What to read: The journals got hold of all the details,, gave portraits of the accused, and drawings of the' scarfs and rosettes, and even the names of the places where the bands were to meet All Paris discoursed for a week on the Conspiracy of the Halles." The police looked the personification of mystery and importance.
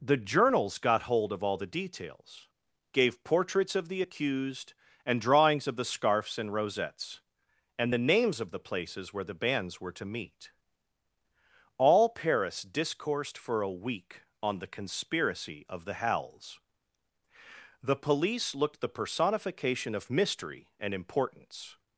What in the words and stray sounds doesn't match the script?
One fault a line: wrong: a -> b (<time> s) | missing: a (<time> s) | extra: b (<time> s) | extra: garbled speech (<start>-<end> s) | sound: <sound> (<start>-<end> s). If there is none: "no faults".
missing: even (7.9 s)